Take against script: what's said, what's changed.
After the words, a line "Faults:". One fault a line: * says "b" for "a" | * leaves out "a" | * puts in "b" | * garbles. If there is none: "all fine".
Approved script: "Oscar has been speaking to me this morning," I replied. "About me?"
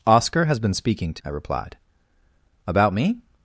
"Oscar has been speaking to," I replied. "About me?"
Faults:
* leaves out "me this morning"